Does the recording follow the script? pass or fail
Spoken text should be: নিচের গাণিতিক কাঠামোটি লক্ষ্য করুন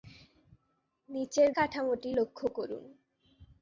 fail